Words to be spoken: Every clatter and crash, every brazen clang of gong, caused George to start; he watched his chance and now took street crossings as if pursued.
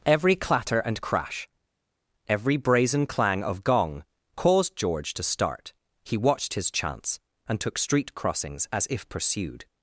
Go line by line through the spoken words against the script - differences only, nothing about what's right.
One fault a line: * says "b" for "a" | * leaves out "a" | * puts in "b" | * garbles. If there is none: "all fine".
* leaves out "now"